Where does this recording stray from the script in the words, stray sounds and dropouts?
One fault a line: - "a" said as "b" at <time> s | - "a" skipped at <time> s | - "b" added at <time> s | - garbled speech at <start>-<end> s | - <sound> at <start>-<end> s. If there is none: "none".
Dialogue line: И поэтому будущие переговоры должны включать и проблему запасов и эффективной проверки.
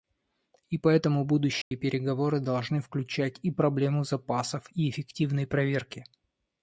- dropout at 1.6-1.7 s